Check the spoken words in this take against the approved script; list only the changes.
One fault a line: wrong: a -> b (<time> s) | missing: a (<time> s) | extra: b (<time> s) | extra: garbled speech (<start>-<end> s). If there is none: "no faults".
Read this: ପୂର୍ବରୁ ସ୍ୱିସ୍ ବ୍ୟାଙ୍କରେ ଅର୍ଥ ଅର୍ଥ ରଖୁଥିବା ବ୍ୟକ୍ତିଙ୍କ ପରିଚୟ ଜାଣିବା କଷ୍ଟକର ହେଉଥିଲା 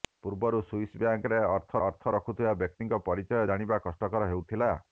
no faults